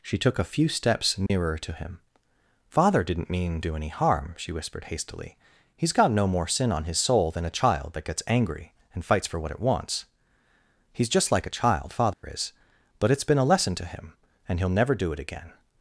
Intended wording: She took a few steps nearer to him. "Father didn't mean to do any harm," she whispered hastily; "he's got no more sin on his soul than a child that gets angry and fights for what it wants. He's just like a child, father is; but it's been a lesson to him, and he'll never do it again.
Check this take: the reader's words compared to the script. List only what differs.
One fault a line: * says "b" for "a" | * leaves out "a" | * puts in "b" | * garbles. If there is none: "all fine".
* leaves out "to"